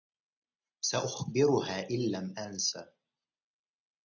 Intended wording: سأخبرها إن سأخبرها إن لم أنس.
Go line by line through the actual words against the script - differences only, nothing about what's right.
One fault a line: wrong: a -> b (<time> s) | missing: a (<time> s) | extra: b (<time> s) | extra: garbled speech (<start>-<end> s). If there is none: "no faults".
missing: سأخبرها إن (2.1 s)